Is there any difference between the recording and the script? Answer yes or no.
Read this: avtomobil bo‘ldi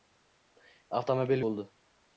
no